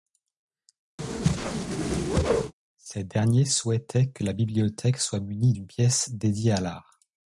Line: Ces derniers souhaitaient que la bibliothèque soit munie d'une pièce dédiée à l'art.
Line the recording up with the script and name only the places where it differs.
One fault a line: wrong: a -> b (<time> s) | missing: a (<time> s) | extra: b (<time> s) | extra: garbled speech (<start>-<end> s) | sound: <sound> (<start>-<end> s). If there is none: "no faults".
sound: whoosh (1.0-2.5 s)